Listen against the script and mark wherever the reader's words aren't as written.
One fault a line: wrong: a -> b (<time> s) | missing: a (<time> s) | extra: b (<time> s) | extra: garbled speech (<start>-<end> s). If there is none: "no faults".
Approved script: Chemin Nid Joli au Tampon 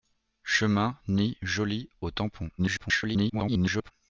extra: garbled speech (2.6-3.9 s)